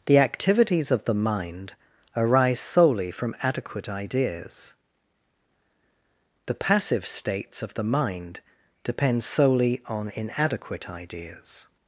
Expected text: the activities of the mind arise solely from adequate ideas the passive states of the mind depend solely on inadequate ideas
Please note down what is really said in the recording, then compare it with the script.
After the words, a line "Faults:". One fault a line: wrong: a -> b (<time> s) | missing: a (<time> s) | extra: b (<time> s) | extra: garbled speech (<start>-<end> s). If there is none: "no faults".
the activities of the mind arise solely from adequate ideas the passive states of the mind depend solely on inadequate ideas
Faults:
no faults